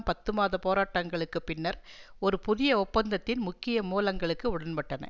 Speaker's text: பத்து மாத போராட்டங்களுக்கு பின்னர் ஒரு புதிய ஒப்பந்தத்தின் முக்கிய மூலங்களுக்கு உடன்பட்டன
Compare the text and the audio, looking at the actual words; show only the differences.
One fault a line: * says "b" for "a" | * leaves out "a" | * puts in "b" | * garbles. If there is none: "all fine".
all fine